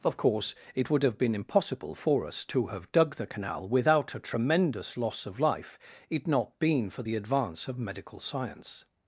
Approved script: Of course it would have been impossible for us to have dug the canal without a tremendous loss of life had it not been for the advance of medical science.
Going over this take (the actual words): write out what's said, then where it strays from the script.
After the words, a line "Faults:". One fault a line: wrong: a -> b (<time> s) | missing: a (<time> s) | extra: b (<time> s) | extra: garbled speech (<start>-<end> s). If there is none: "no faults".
Of course it would have been impossible for us to have dug the canal without a tremendous loss of life it not been for the advance of medical science.
Faults:
missing: had (5.8 s)